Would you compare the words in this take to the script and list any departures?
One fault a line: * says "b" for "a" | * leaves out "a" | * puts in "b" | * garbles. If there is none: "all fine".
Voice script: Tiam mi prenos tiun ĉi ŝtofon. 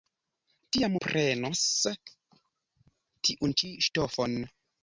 * leaves out "mi"